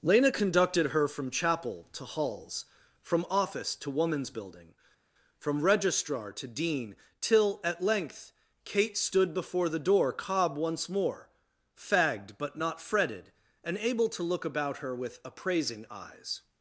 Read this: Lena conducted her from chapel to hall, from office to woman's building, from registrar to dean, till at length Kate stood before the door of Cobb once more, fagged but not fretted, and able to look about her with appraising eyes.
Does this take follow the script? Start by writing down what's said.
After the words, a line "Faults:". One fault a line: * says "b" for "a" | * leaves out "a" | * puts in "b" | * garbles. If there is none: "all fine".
Lena conducted her from chapel to halls, from office to woman's building, from registrar to dean, till at length Kate stood before the door Cobb once more, fagged but not fretted, and able to look about her with appraising eyes.
Faults:
* says "halls" for "hall"
* leaves out "of"